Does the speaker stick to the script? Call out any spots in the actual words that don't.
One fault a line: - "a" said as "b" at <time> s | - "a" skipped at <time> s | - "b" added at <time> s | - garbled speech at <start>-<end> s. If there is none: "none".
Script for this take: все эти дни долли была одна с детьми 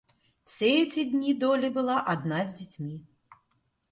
none